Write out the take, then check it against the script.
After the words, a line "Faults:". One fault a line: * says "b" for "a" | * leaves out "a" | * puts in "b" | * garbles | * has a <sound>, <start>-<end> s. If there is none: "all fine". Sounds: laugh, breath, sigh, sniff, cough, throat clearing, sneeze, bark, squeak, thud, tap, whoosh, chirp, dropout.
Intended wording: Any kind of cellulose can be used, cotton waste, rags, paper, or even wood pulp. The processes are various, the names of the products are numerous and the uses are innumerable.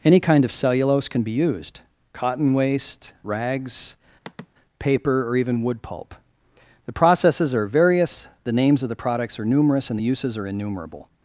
Any kind of cellulose can be used, cotton waste, rags, paper, or even wood pulp. The processes are various, the names of the products are numerous and the uses are innumerable.
Faults:
* has a sigh, 4.2-4.5 s